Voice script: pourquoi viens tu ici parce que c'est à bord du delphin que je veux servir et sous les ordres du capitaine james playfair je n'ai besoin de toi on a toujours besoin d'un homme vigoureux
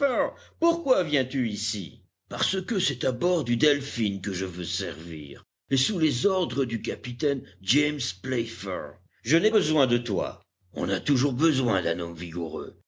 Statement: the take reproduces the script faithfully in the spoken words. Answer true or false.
true